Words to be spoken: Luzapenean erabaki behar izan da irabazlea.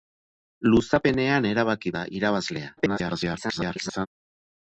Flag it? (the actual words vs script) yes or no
yes